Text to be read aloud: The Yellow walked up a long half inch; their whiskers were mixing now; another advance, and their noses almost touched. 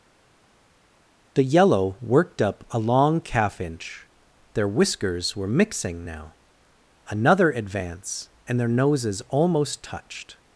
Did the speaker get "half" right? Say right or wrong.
wrong